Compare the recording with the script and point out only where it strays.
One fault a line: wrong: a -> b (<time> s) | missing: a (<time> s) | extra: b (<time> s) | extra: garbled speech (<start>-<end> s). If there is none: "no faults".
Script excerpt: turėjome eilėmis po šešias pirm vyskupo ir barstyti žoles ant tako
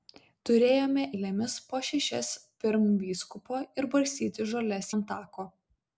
no faults